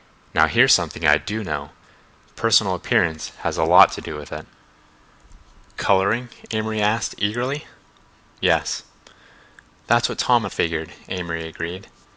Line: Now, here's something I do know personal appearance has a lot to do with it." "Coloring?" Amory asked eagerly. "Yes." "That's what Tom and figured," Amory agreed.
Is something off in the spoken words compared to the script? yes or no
no